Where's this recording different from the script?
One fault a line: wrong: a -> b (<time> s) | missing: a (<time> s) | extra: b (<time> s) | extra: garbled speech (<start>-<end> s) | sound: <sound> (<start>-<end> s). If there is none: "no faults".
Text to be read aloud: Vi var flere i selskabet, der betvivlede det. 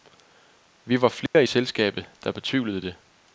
sound: dropout (1.3-1.3 s)